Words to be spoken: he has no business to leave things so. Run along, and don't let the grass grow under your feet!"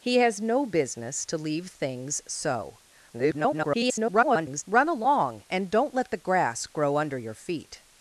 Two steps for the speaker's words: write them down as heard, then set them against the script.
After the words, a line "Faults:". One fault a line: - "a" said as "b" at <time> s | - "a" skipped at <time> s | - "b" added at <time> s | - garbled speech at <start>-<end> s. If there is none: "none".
he has no business to leave things so. [garbled] Run along, and don't let the grass grow under your feet!"
Faults:
- garbled speech at 3.1-4.6 s